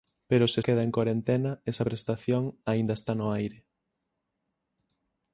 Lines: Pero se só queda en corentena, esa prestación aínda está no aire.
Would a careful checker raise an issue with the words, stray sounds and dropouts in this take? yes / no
yes